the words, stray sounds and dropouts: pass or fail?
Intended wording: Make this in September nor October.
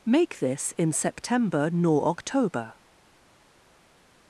pass